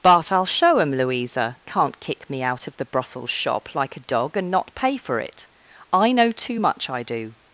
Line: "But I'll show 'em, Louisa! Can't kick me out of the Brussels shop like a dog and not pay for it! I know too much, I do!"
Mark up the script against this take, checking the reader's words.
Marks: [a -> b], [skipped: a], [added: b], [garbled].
"But I'll show 'em, Louisa! Can't kick me out of the Brussels shop like a dog and not pay for it! I know too much, I do!"